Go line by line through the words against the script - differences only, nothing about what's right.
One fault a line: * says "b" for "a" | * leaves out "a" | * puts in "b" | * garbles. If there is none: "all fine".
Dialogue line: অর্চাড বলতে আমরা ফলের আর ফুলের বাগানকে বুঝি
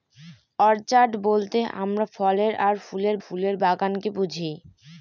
* puts in "ফুলের"